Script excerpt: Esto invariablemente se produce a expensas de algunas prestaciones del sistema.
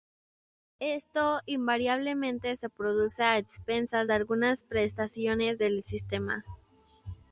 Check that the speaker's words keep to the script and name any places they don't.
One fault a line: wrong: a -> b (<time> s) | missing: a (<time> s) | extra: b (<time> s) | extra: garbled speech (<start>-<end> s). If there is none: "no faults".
no faults